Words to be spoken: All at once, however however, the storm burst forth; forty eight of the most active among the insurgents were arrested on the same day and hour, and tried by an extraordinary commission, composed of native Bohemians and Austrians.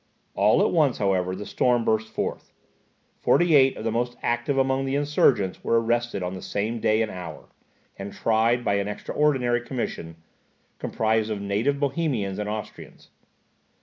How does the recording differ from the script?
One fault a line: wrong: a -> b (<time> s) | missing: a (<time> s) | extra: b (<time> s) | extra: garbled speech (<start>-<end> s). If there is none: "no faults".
missing: however (1.4 s)